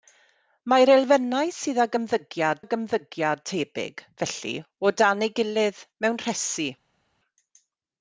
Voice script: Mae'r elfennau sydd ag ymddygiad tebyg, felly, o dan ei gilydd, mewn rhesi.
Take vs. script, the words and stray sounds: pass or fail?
fail